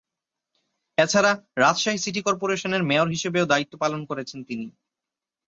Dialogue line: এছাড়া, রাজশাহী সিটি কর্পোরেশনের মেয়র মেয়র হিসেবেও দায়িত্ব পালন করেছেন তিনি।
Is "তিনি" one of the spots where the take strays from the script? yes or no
no